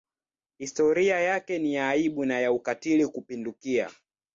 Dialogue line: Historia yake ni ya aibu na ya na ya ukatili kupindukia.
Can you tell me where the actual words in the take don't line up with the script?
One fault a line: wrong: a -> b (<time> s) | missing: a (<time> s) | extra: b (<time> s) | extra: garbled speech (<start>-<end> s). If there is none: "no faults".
missing: na ya (2.5 s)